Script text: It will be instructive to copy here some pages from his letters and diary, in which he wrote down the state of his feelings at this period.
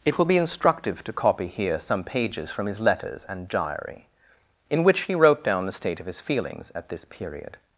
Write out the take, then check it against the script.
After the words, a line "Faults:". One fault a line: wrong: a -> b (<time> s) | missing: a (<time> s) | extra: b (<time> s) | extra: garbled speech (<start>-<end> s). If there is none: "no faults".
It will be instructive to copy here some pages from his letters and diary, in which he wrote down the state of his feelings at this period.
Faults:
no faults